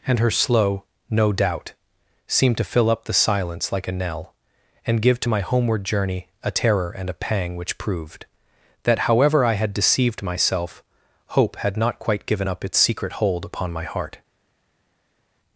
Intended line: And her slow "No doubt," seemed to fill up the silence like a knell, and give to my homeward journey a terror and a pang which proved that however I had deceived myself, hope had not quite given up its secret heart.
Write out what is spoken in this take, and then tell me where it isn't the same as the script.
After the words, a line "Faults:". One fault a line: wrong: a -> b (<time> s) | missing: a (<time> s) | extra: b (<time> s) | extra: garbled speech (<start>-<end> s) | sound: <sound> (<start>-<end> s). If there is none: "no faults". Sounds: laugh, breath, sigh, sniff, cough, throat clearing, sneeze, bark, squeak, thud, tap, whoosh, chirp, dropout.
And her slow "No doubt," seemed to fill up the silence like a knell, and give to my homeward journey a terror and a pang which proved that however I had deceived myself, hope had not quite given up its secret hold upon my heart.
Faults:
extra: hold upon my (13.1 s)